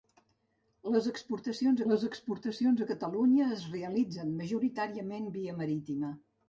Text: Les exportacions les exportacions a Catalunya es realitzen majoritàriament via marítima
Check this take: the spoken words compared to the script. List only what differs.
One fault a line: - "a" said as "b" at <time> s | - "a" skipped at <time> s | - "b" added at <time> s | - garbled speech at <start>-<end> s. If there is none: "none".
none